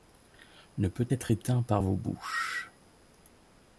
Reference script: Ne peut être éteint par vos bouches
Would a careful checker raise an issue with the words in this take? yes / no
no